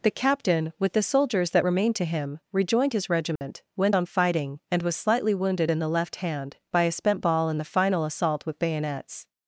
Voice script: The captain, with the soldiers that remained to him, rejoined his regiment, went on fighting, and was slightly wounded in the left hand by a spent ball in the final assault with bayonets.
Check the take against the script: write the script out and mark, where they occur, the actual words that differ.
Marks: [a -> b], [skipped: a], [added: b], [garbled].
The captain, with the soldiers that remained to him, rejoined his regiment, went on fighting, and was slightly wounded in the left hand by a spent ball in the final assault with bayonets.